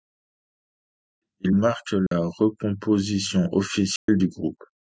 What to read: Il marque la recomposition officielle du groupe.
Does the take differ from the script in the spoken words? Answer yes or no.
no